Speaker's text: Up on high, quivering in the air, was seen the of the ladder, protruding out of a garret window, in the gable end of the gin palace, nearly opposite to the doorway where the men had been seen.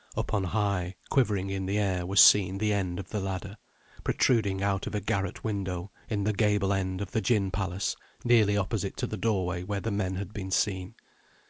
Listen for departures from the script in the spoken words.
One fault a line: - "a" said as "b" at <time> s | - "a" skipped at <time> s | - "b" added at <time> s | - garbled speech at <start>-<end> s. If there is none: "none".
- "end" added at 2.7 s